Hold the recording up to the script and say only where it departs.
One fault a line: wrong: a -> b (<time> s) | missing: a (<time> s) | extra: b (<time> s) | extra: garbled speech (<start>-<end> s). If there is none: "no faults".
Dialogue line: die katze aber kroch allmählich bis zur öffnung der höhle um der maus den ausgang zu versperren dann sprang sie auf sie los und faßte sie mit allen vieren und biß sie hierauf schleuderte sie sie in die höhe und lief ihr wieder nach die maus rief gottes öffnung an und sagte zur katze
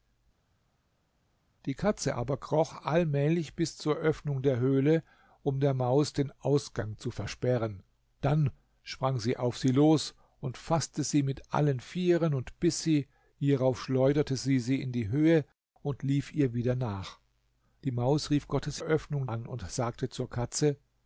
no faults